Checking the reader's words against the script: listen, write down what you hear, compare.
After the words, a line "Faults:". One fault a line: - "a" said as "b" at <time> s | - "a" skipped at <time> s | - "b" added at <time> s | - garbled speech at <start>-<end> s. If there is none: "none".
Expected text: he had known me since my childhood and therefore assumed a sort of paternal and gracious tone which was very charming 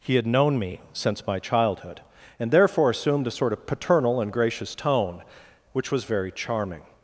he had known me since my childhood and therefore assumed a sort of paternal and gracious tone which was very charming
Faults:
none